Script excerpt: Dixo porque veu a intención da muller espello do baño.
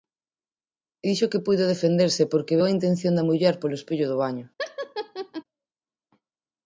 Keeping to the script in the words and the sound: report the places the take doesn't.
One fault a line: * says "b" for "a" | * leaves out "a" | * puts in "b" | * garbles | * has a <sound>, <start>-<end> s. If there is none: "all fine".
* puts in "que puido defenderse"
* puts in "polo"
* has a laugh, 4.6-5.4 s